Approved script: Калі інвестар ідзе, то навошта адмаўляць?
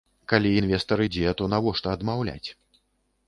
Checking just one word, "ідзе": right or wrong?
right